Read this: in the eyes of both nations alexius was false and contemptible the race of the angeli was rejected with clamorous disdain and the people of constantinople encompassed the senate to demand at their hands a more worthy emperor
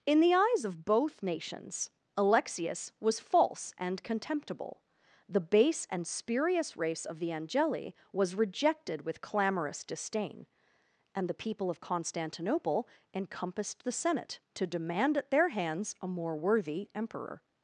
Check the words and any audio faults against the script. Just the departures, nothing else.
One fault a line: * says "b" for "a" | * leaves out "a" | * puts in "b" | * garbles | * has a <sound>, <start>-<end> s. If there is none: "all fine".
* puts in "base and spurious"